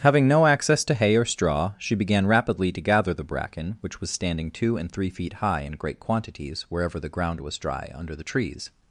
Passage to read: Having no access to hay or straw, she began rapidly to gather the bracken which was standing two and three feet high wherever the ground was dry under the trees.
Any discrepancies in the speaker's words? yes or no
yes